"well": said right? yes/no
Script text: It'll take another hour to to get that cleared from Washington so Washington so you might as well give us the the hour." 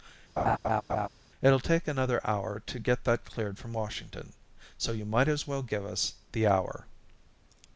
yes